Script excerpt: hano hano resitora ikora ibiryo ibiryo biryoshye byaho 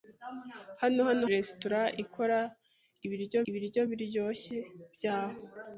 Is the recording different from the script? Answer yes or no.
no